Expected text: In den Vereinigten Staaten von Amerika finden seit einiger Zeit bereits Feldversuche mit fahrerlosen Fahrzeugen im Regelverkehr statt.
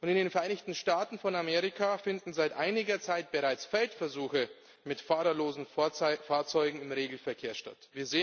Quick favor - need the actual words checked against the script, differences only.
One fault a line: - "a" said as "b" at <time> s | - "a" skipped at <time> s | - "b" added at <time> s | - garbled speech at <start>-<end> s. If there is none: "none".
none